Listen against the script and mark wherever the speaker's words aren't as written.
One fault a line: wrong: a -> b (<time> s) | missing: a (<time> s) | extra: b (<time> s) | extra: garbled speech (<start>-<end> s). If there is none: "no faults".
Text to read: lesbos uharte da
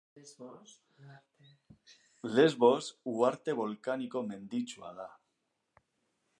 extra: bolkaniko menditsua (3.6 s)